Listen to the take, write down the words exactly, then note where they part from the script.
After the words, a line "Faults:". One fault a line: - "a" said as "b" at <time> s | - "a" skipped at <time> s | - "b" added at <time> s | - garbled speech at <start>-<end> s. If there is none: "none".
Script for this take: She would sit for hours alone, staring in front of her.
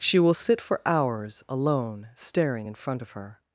She will sit for hours alone, staring in front of her.
Faults:
- "would" said as "will" at 0.2 s